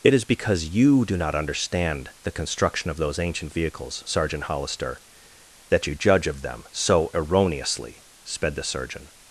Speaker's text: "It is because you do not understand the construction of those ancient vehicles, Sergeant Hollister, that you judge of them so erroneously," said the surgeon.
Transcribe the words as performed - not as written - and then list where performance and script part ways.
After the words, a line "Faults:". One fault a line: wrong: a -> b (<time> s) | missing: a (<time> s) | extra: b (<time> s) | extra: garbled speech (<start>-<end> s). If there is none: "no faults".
"It is because you do not understand the construction of those ancient vehicles, Sergeant Hollister, that you judge of them so erroneously," sped the surgeon.
Faults:
wrong: said -> sped (8.2 s)